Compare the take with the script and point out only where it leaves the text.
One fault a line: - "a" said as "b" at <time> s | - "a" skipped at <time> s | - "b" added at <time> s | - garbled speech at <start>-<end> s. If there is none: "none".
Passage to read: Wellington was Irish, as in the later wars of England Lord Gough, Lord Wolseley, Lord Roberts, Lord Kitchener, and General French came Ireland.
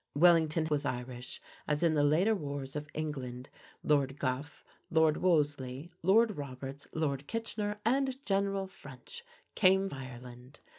none